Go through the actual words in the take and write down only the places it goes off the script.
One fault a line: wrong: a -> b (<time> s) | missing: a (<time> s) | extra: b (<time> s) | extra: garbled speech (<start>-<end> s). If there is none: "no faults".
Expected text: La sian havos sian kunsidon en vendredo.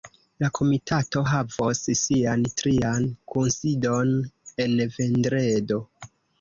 wrong: sian -> komitato (0.6 s)
extra: trian (2.6 s)